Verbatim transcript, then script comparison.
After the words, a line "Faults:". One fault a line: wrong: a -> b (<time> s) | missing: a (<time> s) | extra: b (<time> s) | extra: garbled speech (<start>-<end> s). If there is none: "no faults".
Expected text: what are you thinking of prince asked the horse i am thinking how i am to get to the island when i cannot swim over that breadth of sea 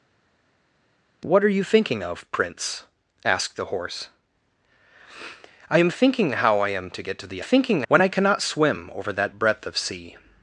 what are you thinking of prince asked the horse i am thinking how i am to get to the thinking when i cannot swim over that breadth of sea
Faults:
wrong: island -> thinking (7.4 s)